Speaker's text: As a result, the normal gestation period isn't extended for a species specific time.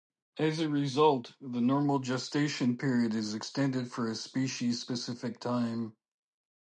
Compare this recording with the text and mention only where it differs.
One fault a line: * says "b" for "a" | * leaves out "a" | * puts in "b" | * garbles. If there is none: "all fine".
* says "is" for "isn't"